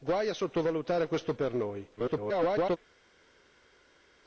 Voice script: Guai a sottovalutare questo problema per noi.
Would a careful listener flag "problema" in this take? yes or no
yes